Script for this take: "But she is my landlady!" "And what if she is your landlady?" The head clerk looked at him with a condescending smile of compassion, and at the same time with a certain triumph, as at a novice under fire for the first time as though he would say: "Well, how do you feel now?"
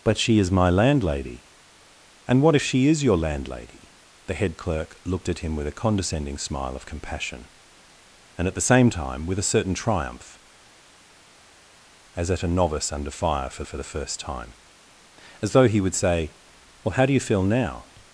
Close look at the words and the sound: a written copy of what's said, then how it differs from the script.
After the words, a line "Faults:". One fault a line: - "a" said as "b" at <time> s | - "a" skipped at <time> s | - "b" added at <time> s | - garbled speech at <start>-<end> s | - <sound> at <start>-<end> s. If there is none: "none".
"But she is my landlady!" "And what if she is your landlady?" The head clerk looked at him with a condescending smile of compassion, and at the same time with a certain triumph, as at a novice under fire for for the first time as though he would say: "Well, how do you feel now?"
Faults:
- "for" added at 13.6 s